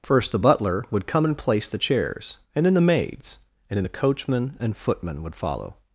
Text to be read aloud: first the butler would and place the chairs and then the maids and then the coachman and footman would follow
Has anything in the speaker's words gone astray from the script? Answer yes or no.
yes